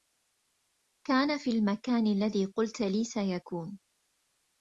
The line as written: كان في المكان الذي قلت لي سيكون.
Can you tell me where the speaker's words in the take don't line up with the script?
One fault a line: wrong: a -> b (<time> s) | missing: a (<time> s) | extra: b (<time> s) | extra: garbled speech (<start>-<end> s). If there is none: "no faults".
no faults